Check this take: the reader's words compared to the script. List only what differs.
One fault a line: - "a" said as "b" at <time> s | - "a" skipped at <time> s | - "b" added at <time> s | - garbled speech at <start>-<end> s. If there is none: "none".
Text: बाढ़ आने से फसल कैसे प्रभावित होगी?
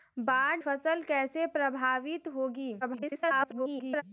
- "आने से" skipped at 0.6 s
- garbled speech at 2.8-4.0 s